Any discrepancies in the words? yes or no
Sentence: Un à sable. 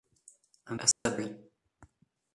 no